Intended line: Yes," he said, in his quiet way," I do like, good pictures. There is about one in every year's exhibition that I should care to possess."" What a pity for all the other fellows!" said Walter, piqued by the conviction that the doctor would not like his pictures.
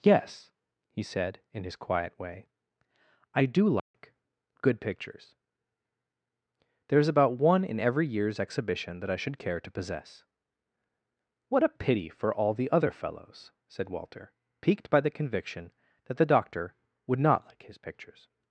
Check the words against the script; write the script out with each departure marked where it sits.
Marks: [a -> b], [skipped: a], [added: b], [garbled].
Yes," he said, in his quiet way," I do like, good pictures. There is about one in every year's exhibition that I should care to possess."" What a pity for all the other fellows!" said Walter, piqued by the conviction that the doctor would not like his pictures.